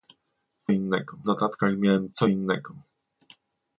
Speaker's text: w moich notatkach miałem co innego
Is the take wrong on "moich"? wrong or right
wrong